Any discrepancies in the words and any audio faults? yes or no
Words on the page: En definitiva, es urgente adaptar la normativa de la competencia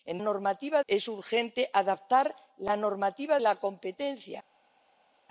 yes